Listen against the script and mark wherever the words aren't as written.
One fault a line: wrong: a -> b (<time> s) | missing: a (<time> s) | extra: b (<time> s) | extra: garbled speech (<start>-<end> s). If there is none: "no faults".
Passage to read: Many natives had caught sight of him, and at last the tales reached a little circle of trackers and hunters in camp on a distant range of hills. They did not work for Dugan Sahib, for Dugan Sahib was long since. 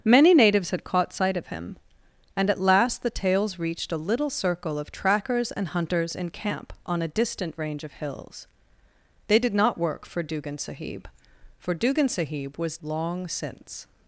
no faults